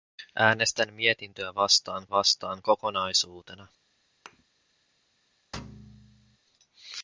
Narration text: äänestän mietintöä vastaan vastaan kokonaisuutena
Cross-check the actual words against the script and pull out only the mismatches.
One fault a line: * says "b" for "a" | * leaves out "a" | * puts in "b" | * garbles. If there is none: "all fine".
all fine